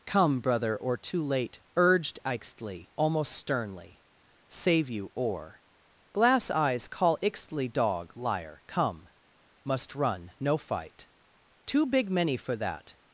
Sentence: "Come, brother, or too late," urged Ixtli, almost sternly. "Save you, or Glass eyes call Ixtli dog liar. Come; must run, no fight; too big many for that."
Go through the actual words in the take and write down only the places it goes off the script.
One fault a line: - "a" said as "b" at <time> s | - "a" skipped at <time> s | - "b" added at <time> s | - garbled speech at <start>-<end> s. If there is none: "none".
none